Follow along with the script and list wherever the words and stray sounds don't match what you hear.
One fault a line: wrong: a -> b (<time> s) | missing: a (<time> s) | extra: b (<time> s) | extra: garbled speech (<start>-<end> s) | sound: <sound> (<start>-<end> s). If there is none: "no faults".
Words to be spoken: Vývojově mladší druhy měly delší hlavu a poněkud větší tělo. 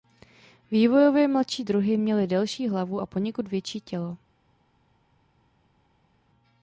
no faults